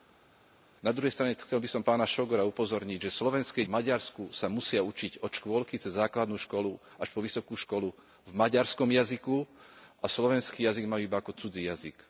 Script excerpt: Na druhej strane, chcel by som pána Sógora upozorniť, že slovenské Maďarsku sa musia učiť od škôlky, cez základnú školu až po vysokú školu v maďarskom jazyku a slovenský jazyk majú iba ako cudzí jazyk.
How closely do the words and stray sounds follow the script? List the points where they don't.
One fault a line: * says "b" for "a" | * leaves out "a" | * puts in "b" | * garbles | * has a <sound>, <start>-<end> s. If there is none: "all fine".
all fine